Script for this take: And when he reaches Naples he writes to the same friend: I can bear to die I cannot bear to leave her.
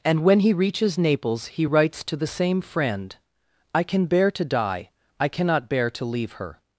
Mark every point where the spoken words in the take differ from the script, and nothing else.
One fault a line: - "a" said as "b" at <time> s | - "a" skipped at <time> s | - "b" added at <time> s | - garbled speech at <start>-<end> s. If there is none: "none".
none